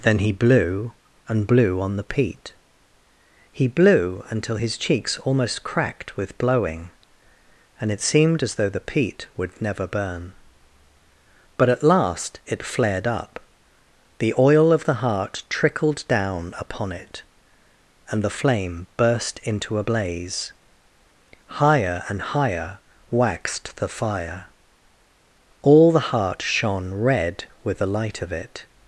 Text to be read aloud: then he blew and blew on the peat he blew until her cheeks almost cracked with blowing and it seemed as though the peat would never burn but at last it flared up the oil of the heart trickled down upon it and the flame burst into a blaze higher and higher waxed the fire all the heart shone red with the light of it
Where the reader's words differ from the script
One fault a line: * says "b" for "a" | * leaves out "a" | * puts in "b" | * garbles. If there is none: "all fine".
* says "his" for "her"